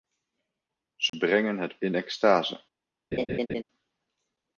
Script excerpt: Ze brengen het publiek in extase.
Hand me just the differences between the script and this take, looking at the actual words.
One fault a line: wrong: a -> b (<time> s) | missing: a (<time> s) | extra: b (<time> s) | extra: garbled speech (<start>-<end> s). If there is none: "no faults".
missing: publiek (1.8 s)